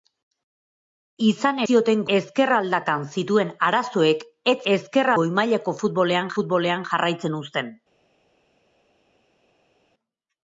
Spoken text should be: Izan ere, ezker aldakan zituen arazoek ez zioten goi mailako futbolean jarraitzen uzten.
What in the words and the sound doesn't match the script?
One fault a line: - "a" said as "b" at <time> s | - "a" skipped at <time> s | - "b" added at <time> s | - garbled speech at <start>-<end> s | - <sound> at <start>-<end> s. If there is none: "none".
- "ere" said as "zioten" at 1.7 s
- "zioten" said as "ezker" at 4.7 s
- "futbolean" added at 6.4 s